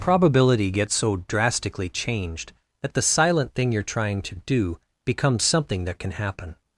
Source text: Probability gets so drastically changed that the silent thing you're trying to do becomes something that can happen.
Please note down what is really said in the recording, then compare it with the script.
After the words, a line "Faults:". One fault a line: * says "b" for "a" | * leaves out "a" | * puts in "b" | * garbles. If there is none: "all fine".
Probability gets so drastically changed that the silent thing you're trying to do becomes something that can happen.
Faults:
all fine